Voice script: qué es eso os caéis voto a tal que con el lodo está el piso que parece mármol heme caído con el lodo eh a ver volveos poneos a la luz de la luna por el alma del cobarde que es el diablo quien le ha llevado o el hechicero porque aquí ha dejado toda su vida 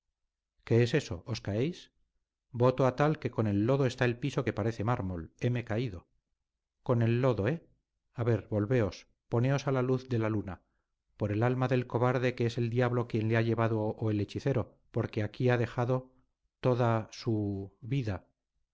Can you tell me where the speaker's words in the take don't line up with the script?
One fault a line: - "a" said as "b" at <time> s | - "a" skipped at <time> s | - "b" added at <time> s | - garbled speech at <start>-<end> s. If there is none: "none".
none